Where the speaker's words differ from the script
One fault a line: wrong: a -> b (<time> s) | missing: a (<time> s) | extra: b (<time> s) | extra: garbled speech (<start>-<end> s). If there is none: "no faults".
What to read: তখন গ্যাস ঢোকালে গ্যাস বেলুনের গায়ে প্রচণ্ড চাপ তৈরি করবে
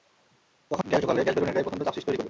no faults